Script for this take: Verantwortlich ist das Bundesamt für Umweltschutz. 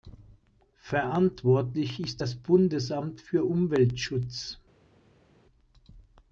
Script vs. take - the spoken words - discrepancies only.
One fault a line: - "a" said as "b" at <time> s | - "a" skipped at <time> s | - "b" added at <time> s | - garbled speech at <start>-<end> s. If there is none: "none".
none